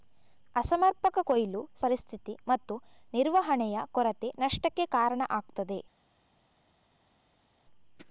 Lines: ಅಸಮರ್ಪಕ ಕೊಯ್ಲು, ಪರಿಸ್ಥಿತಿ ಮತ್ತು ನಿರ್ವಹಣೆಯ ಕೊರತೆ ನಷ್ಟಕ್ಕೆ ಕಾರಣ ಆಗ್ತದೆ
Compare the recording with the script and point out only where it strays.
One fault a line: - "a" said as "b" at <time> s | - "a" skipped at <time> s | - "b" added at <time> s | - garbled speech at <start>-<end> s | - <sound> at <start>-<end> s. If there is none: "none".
none